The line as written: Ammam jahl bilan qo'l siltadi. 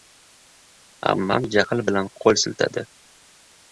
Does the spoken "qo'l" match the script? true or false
true